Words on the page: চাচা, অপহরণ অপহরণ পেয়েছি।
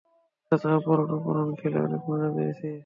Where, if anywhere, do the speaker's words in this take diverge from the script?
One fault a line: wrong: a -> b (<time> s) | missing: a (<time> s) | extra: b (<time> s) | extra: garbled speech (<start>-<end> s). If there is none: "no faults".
extra: খেলে অনেক মজা (1.6 s)